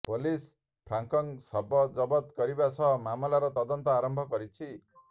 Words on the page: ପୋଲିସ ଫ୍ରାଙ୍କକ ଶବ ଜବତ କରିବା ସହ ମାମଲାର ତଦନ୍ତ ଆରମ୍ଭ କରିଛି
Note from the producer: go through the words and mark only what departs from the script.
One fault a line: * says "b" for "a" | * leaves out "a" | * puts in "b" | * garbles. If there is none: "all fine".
all fine